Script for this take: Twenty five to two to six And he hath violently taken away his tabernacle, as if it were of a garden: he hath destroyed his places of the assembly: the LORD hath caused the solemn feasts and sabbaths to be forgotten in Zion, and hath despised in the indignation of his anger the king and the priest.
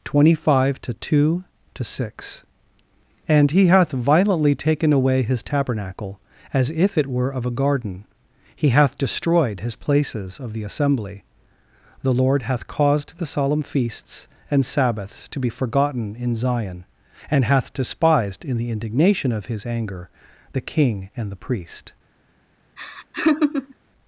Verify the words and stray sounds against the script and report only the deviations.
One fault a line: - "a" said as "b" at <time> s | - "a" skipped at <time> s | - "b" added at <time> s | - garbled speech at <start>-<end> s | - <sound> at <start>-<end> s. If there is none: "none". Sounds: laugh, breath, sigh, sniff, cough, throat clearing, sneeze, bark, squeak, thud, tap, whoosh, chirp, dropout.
- laugh at 22.8-23.7 s